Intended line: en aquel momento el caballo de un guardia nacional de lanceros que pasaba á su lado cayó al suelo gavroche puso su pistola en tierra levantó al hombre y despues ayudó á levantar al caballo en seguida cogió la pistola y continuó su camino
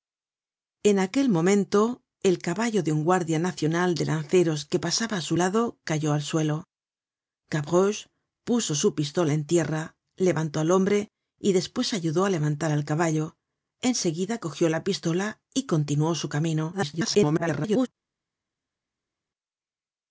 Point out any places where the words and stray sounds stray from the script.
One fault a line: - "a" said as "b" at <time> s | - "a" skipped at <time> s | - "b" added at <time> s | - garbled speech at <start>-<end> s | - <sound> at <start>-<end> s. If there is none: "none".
- garbled speech at 16.7-17.9 s